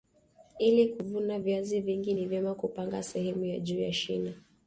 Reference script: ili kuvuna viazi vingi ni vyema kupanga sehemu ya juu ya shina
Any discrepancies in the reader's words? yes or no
no